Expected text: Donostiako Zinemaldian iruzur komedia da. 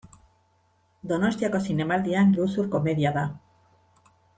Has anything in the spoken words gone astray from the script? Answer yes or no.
no